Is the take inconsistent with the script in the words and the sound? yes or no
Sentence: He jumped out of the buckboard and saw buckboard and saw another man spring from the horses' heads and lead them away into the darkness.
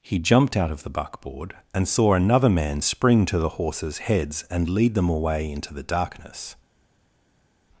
yes